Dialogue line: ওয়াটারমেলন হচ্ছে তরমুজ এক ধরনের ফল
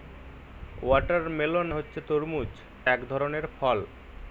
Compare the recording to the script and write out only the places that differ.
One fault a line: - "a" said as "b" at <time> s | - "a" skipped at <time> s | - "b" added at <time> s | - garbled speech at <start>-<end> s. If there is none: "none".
none